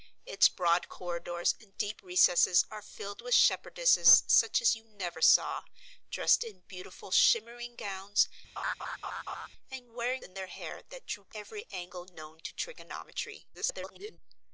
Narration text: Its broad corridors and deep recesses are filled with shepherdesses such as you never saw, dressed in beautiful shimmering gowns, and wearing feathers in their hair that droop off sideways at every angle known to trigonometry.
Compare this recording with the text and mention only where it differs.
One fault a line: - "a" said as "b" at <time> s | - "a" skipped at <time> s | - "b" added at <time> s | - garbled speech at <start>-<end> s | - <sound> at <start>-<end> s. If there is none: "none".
- laugh at 8.6-9.5 s
- "feathers" skipped at 10.2 s
- "off sideways at" skipped at 11.3 s
- garbled speech at 13.5-14.2 s